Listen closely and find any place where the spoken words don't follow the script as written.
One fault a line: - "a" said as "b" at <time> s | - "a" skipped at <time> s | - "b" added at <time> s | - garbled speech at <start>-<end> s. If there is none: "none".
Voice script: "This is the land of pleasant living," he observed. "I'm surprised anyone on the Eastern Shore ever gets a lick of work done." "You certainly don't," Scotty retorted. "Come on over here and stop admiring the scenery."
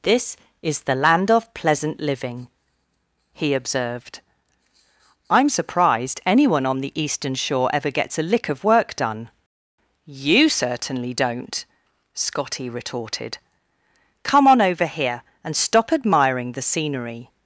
none